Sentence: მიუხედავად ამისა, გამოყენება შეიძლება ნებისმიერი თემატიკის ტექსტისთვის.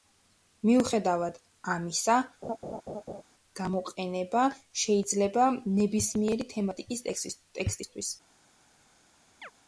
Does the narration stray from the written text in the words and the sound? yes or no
yes